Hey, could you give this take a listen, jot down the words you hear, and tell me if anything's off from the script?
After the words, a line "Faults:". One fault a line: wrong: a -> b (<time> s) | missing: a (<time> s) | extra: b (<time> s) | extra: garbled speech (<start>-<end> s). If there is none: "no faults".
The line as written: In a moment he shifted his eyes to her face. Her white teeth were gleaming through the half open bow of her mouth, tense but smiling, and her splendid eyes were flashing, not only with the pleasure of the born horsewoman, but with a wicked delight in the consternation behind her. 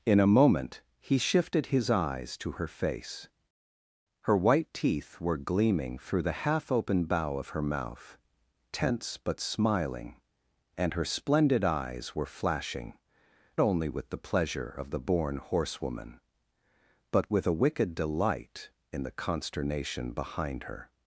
In a moment he shifted his eyes to her face. Her white teeth were gleaming through the half open bow of her mouth, tense but smiling, and her splendid eyes were flashing, only with the pleasure of the born horsewoman, but with a wicked delight in the consternation behind her.
Faults:
missing: not (13.0 s)